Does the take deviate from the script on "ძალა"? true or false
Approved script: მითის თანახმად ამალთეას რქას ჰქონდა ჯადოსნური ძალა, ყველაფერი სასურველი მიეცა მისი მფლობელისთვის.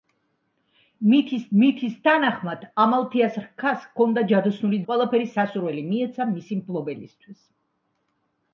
true